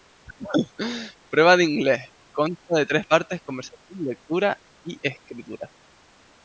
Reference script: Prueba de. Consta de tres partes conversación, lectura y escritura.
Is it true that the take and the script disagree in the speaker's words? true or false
true